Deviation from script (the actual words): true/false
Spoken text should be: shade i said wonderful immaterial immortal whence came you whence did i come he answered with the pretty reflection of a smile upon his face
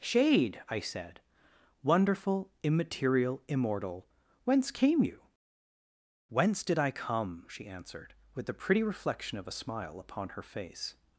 true